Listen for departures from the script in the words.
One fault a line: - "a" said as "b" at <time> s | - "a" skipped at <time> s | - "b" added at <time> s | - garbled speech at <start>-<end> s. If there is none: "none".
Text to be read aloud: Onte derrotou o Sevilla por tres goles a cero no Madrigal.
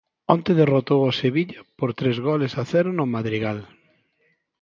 none